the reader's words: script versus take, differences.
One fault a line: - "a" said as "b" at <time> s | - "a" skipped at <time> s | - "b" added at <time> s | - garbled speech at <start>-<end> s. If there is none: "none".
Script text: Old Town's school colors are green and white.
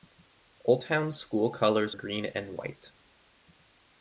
- "are" skipped at 1.9 s